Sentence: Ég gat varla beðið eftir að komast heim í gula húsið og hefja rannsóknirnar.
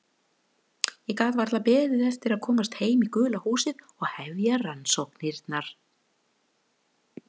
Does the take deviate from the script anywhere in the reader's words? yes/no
no